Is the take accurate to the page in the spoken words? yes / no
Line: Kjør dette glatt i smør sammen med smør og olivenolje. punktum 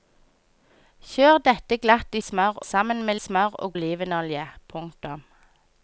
yes